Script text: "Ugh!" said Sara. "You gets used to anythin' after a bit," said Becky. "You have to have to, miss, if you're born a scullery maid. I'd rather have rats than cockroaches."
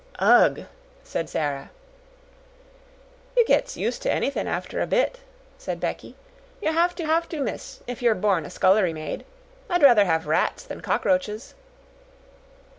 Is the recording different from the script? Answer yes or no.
no